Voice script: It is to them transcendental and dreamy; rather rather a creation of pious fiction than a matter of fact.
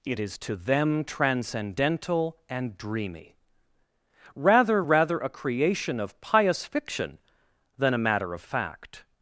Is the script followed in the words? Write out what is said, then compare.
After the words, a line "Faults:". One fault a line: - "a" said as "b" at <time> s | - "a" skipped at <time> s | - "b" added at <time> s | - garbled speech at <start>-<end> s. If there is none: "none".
It is to them transcendental and dreamy; rather rather a creation of pious fiction than a matter of fact.
Faults:
none